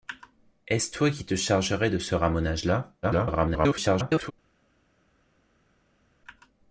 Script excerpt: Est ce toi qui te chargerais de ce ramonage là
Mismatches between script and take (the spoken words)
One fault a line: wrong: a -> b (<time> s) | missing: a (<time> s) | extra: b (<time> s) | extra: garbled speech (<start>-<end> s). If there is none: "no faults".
extra: garbled speech (3.0-4.3 s)